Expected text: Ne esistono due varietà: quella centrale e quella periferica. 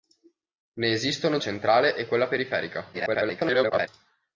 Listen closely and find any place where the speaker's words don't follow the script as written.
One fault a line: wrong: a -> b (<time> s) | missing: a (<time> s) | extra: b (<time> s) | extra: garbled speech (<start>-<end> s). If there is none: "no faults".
missing: due varietà quella (1.4 s)
extra: garbled speech (2.9-3.9 s)